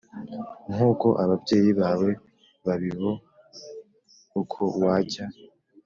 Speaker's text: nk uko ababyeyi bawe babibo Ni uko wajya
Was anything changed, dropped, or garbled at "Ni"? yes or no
yes